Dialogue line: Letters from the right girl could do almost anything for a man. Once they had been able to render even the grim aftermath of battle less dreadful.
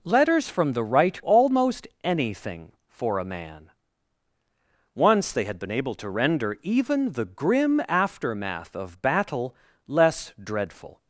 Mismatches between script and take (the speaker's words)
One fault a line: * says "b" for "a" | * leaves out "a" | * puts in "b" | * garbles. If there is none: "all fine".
* leaves out "girl could do"